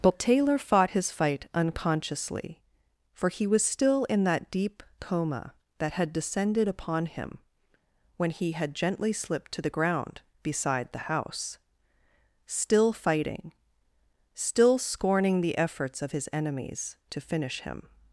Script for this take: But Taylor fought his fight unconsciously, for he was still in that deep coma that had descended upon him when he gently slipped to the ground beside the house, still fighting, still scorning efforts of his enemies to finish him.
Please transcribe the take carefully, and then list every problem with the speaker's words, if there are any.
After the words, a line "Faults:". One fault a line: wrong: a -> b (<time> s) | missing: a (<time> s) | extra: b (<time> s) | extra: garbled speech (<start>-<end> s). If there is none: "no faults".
But Taylor fought his fight unconsciously, for he was still in that deep coma that had descended upon him when he had gently slipped to the ground beside the house, still fighting, still scorning the efforts of his enemies to finish him.
Faults:
extra: had (8.5 s)
extra: the (15.4 s)